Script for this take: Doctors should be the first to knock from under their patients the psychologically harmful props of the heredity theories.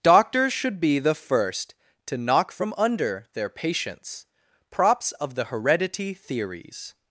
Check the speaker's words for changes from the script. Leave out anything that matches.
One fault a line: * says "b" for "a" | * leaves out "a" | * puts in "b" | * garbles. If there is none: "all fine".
* leaves out "the psychologically harmful"